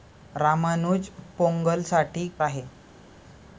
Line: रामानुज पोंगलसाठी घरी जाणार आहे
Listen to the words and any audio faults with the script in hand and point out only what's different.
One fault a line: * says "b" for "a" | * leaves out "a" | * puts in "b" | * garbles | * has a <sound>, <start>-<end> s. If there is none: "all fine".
* leaves out "घरी जाणार"